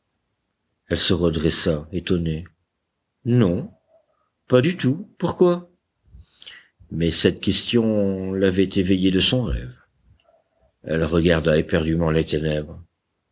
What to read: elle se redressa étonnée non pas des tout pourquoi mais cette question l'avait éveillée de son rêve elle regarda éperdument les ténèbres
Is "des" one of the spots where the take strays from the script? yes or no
yes